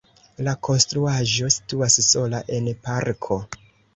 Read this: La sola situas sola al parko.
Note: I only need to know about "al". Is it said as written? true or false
false